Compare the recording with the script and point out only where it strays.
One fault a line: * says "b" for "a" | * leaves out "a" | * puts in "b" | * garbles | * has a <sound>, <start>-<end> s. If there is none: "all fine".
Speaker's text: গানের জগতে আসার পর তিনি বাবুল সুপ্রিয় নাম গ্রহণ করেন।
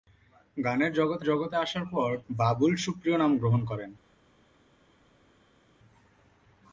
* puts in "জগতে"
* leaves out "তিনি"